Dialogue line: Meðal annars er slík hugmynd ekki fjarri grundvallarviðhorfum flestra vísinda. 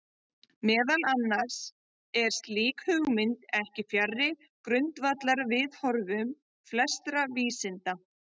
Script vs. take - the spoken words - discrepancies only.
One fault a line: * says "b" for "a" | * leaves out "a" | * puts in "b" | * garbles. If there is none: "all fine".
all fine